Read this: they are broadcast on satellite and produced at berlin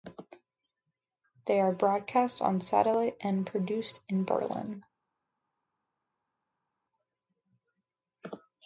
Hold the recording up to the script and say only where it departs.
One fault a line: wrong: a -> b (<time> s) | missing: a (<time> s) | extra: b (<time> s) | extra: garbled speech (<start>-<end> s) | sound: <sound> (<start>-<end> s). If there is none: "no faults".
wrong: at -> in (4.1 s)